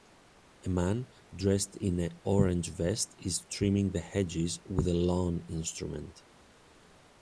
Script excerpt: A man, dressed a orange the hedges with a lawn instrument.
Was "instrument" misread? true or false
false